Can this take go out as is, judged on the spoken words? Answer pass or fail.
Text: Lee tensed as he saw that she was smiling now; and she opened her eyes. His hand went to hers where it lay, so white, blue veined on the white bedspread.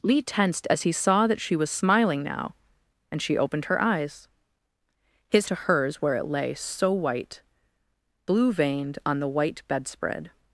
fail